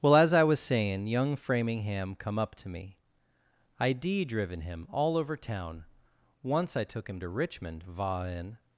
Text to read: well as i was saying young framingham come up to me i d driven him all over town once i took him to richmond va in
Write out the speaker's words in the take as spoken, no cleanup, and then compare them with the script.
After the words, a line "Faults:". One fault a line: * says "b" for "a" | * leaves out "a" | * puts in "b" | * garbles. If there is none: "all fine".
well as i was saying young framingham come up to me i d driven him all over town once i took him to richmond va in
Faults:
all fine